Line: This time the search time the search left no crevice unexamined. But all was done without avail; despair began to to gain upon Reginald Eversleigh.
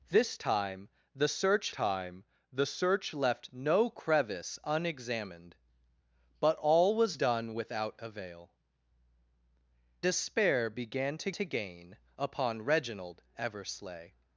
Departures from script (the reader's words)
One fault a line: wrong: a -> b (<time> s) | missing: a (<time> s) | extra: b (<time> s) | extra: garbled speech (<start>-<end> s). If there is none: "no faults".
no faults